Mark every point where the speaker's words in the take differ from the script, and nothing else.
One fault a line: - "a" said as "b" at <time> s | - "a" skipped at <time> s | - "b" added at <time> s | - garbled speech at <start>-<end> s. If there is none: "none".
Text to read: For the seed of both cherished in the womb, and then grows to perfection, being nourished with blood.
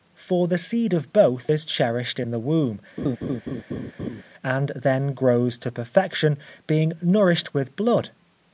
- "is" added at 1.5 s